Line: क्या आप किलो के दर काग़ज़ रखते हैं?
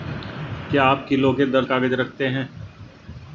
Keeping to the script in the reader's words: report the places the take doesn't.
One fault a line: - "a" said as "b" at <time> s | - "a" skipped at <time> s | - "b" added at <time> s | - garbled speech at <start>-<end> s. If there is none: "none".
none